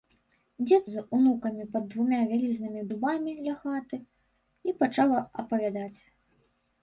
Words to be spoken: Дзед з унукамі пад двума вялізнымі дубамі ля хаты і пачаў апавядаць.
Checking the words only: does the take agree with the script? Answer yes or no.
yes